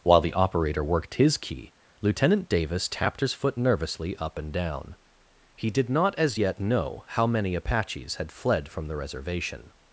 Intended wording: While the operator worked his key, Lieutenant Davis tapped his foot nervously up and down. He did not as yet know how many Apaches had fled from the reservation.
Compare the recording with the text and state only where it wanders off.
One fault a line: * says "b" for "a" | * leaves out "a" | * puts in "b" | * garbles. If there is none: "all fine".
all fine